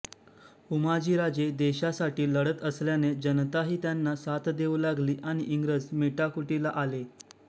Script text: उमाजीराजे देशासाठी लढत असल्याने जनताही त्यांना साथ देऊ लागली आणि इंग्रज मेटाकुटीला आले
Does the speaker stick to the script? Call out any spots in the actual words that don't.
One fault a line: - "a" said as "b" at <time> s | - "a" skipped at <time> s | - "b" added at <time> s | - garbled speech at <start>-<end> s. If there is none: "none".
none